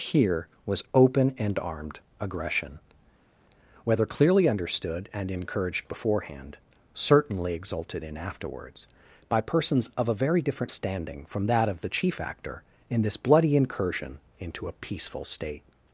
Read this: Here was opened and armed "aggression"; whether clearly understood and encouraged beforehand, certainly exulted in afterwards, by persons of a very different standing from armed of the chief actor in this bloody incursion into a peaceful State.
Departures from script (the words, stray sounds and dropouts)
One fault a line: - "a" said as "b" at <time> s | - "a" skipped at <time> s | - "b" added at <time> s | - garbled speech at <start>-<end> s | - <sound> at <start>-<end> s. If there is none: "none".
- "opened" said as "open" at 0.9 s
- "armed" said as "that" at 11.5 s